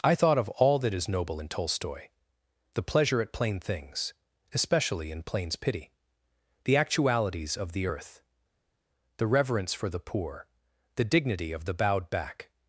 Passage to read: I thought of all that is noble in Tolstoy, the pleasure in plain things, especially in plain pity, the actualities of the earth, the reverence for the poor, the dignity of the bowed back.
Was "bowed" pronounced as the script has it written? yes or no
yes